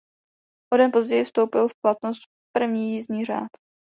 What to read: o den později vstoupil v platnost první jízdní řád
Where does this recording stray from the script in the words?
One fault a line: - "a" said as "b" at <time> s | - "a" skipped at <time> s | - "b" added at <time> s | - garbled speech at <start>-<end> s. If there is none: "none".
none